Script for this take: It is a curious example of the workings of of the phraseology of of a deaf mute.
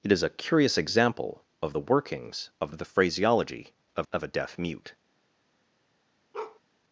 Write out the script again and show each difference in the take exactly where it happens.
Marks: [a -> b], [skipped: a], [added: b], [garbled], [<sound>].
It is a curious example of the workings of of the phraseology of of a deaf mute. [bark]